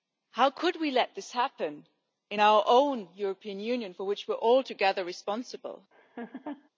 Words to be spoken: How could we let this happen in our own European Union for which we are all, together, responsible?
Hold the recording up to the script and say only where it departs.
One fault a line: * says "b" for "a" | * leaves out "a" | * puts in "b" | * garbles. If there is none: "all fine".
all fine